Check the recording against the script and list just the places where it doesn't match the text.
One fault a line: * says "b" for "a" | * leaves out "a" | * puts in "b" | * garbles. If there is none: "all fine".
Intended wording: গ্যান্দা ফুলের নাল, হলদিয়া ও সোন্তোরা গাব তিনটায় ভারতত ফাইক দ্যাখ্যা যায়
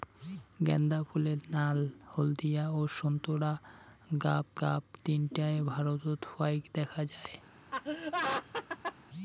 * puts in "গাব"